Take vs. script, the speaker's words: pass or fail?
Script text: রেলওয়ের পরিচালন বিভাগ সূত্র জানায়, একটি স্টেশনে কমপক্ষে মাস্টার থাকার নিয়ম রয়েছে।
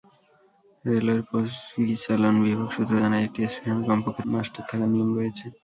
pass